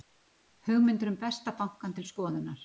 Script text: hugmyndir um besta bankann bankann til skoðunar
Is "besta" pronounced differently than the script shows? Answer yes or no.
no